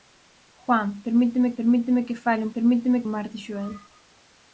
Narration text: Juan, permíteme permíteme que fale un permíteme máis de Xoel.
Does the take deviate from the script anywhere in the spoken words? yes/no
no